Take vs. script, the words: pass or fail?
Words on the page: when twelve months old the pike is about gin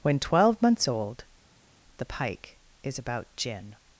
pass